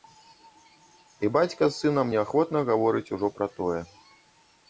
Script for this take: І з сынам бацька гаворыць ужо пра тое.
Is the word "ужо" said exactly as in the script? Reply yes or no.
yes